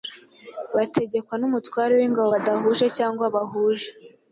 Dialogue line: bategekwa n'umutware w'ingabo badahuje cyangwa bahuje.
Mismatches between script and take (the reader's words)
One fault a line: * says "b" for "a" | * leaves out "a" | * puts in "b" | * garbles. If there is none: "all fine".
all fine